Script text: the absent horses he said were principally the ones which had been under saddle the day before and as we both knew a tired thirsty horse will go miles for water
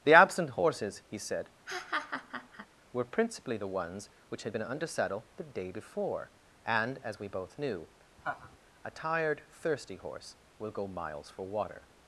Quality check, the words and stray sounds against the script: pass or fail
fail